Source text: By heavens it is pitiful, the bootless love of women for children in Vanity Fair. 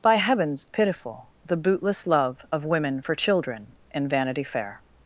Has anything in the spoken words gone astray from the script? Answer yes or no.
yes